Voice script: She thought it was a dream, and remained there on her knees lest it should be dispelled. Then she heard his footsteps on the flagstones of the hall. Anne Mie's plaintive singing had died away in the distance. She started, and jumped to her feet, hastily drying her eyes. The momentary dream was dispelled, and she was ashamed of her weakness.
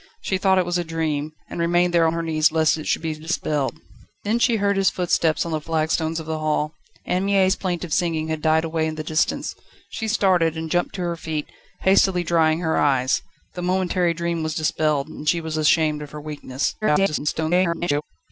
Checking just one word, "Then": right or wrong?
right